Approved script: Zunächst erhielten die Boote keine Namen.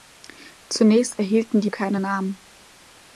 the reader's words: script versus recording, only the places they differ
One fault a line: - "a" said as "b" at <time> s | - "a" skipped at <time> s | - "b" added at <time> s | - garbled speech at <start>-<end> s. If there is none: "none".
- "Boote" skipped at 1.7 s